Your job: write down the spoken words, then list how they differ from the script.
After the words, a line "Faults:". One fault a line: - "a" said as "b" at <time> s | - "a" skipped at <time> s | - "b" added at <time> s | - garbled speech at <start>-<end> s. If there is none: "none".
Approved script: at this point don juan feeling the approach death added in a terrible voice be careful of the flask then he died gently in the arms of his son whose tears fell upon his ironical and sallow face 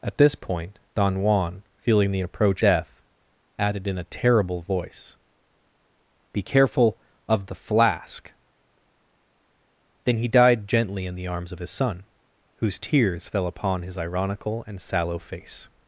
at this point don juan feeling the approach death added in a terrible voice be careful of the flask then he died gently in the arms of his son whose tears fell upon his ironical and sallow face
Faults:
none